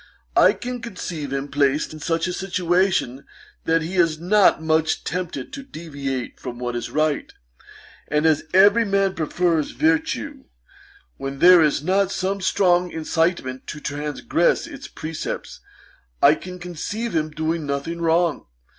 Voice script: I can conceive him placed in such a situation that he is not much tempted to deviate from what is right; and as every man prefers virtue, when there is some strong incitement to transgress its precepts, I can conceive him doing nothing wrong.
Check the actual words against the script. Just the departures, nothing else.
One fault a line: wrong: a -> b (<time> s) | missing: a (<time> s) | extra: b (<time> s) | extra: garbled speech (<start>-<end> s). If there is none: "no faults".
extra: not (11.8 s)